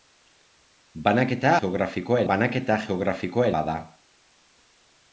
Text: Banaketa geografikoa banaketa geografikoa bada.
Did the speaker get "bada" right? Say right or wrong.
right